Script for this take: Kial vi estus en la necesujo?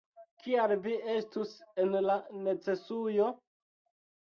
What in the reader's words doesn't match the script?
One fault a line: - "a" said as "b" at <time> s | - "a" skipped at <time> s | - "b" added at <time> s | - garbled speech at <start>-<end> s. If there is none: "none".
none